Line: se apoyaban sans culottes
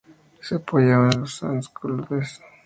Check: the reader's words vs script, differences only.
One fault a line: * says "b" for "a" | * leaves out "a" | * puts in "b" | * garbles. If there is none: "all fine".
* puts in "en los"